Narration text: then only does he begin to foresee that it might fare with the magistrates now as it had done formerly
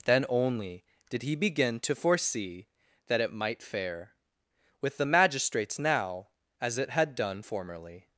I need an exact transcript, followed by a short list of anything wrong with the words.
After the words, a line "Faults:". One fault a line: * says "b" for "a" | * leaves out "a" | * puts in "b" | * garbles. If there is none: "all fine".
then only did he begin to foresee that it might fare with the magistrates now as it had done formerly
Faults:
* says "did" for "does"